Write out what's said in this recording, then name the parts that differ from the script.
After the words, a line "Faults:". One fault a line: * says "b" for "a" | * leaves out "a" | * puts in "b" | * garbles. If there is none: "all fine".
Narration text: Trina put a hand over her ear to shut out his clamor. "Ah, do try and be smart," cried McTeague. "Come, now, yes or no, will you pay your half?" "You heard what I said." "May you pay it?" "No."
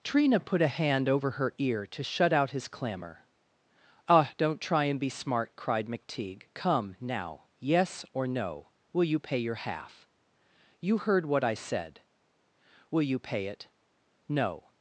Trina put a hand over her ear to shut out his clamor. "Ah, don't try and be smart," cried McTeague. "Come, now, yes or no, will you pay your half?" "You heard what I said." "Will you pay it?" "No."
Faults:
* says "don't" for "do"
* says "Will" for "May"